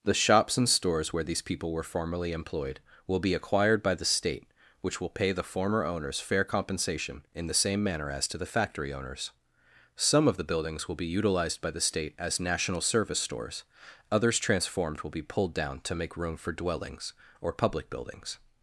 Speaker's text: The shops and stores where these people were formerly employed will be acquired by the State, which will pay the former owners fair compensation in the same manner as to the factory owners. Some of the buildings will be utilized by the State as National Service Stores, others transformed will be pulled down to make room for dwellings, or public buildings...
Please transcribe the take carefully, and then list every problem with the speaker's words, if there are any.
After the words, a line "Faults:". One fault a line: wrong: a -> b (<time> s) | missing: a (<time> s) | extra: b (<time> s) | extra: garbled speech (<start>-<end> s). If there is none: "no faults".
The shops and stores where these people were formerly employed will be acquired by the State, which will pay the former owners fair compensation in the same manner as to the factory owners. Some of the buildings will be utilized by the State as National Service Stores, others transformed will be pulled down to make room for dwellings, or public buildings...
Faults:
no faults